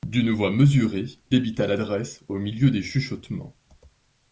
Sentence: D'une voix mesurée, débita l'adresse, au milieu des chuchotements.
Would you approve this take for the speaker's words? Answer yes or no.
yes